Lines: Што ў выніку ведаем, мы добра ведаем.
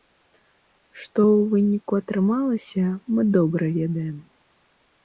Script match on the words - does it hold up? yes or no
no